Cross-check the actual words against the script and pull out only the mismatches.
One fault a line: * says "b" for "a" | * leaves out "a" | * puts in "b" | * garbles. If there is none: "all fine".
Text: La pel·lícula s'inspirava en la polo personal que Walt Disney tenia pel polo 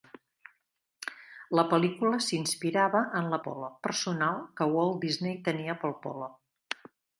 all fine